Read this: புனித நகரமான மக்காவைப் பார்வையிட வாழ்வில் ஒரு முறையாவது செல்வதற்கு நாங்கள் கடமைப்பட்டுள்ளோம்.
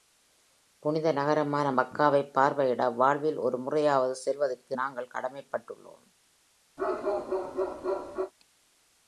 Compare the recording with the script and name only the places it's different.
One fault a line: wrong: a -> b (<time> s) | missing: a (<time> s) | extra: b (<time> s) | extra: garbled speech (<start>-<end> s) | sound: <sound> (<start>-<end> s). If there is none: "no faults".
sound: bark (6.8-8.3 s)